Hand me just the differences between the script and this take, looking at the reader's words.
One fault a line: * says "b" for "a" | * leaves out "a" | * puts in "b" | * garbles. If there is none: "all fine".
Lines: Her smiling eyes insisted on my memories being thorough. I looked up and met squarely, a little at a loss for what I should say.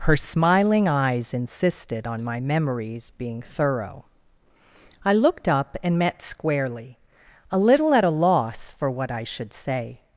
all fine